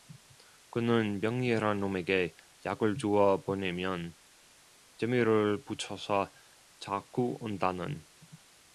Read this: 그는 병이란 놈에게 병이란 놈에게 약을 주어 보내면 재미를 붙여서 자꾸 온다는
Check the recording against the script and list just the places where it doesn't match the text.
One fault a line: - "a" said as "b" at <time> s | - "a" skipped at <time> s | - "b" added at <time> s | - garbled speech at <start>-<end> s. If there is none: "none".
- "병이란 놈에게" skipped at 2.4 s